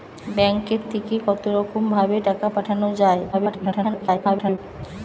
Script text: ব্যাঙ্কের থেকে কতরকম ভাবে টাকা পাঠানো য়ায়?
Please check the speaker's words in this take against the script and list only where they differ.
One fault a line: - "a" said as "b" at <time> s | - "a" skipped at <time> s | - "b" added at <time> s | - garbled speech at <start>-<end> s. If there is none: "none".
- garbled speech at 3.3-4.6 s